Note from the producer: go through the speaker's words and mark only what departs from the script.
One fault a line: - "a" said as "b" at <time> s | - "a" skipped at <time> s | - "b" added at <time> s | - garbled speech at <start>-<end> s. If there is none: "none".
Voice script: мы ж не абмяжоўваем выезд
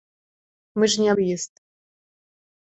- "абмяжоўваем" skipped at 1.1 s